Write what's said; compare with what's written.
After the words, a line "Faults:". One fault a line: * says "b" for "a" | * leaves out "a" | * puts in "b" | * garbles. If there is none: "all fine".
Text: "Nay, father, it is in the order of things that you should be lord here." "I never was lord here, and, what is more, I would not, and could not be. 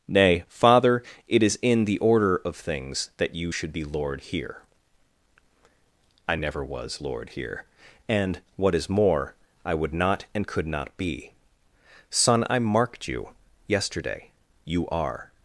"Nay, father, it is in the order of things that you should be lord here." "I never was lord here, and, what is more, I would not, and could not be. Son, I marked you yesterday. You are
Faults:
* puts in "Son I marked you yesterday You are"